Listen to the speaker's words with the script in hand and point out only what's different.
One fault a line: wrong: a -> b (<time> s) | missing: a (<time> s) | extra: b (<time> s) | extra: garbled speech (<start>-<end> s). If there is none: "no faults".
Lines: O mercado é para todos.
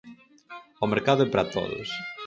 no faults